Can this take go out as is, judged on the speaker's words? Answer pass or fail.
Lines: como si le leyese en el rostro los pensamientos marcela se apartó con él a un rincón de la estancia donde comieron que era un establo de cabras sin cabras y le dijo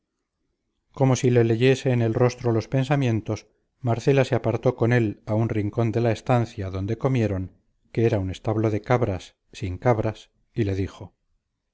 pass